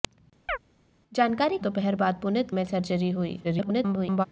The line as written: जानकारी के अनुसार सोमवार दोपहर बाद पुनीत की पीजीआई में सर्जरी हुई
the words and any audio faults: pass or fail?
fail